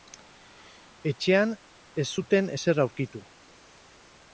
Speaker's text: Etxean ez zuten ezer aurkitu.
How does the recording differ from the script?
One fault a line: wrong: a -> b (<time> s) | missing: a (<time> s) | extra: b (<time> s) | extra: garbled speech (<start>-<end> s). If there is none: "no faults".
no faults